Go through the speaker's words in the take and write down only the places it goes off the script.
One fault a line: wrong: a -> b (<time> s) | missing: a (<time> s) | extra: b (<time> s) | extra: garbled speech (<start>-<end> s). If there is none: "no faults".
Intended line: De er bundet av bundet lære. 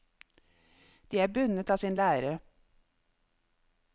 wrong: bundet -> sin (1.7 s)